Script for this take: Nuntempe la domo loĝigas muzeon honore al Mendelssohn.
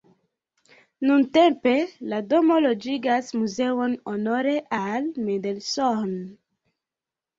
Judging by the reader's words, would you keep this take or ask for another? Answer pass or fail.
pass